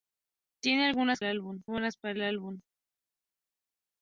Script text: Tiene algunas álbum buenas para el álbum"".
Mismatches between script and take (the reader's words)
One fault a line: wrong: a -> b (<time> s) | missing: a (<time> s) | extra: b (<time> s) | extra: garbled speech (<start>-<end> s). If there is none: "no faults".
no faults